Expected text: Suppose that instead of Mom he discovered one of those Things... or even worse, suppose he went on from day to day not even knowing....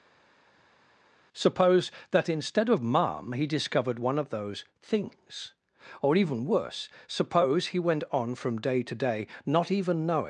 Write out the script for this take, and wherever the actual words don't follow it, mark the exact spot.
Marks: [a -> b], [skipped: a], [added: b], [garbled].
Suppose that instead of Mom he discovered one of those Things... or even worse, suppose he went on from day to day not even knowing....